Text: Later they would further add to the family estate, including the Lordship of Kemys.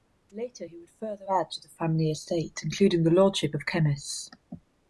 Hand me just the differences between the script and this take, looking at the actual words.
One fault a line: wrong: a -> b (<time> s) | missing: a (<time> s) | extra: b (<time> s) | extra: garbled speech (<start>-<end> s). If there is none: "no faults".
wrong: they -> he (0.6 s)